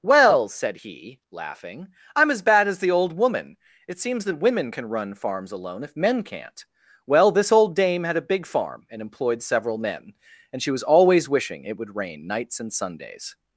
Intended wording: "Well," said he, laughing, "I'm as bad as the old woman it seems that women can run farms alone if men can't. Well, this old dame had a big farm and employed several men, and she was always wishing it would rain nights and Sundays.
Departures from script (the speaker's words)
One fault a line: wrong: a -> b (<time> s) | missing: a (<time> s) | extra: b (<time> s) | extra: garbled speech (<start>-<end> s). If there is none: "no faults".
no faults